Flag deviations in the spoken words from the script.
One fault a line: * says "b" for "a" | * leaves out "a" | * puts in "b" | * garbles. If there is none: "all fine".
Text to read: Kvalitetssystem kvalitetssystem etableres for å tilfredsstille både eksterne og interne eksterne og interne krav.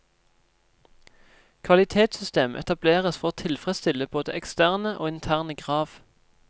* leaves out "kvalitetssystem"
* leaves out "eksterne og interne"